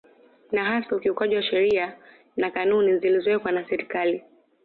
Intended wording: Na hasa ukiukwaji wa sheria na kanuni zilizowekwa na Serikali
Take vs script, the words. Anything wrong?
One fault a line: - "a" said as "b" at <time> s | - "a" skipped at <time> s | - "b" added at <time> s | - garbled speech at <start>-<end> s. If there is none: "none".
none